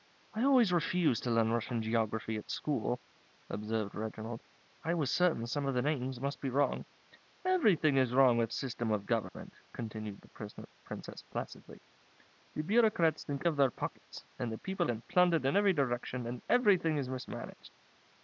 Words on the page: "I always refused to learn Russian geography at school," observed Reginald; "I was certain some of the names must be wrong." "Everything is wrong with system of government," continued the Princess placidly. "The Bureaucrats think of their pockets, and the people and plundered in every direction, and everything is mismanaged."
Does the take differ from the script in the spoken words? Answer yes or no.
no